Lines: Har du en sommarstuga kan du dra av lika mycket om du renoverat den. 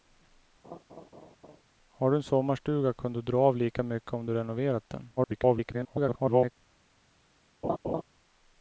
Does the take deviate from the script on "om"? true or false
false